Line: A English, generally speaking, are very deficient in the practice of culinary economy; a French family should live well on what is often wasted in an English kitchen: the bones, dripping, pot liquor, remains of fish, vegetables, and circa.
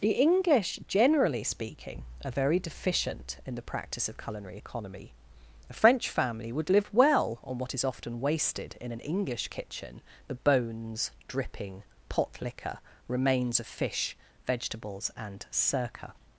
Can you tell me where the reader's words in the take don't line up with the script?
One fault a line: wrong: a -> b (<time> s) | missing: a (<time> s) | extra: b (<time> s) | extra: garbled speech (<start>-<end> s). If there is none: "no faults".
wrong: A -> The (0.0 s)
wrong: should -> would (6.5 s)